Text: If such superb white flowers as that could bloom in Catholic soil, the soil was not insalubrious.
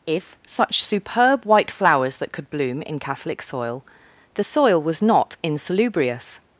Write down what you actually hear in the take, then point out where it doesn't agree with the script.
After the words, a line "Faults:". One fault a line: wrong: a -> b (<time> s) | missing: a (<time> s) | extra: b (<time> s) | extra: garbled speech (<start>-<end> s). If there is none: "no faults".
If such superb white flowers that could bloom in Catholic soil, the soil was not insalubrious.
Faults:
missing: as (2.2 s)